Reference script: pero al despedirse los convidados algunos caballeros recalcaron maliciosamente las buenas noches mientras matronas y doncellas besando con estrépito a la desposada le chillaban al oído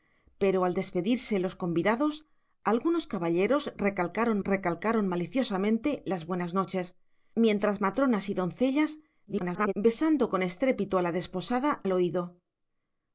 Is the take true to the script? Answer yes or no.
no